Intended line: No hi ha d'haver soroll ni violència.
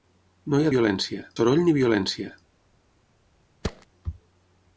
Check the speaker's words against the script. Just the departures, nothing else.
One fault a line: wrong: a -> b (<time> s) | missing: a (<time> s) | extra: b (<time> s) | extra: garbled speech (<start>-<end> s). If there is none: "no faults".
wrong: d'haver -> violència (0.7 s)